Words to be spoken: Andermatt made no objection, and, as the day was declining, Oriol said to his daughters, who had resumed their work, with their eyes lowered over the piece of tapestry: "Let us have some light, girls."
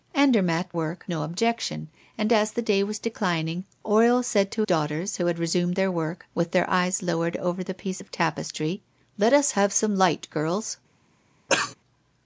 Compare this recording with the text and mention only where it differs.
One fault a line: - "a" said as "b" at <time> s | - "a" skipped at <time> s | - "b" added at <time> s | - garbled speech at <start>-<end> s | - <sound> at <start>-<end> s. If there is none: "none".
- "made" said as "work" at 0.7 s
- "his" skipped at 4.6 s
- cough at 11.5-11.7 s